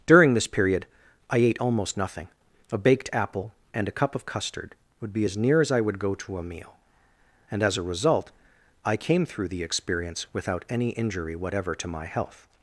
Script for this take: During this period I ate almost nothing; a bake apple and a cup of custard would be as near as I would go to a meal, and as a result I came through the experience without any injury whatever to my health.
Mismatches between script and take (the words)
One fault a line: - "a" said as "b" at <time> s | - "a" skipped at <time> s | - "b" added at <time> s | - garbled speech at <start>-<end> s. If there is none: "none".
- "bake" said as "baked" at 2.8 s